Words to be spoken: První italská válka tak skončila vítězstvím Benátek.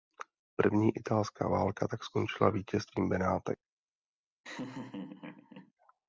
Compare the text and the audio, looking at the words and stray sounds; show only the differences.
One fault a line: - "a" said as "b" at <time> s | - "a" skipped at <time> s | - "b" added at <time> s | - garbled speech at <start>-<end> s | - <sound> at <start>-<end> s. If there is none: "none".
- laugh at 4.4-5.7 s